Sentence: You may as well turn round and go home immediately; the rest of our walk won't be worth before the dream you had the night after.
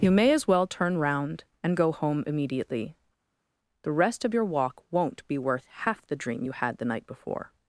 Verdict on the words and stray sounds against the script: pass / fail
fail